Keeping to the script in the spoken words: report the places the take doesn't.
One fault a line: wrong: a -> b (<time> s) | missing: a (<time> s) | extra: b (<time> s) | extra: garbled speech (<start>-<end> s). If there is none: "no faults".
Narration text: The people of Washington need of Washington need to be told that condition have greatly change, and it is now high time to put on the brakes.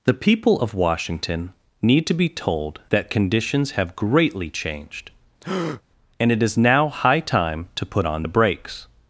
missing: of Washington need (2.1 s)
wrong: condition -> conditions (3.1 s)
wrong: change -> changed (4.5 s)